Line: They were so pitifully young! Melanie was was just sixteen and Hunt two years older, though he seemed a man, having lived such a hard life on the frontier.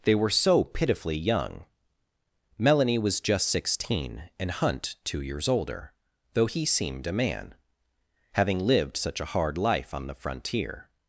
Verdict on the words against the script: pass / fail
fail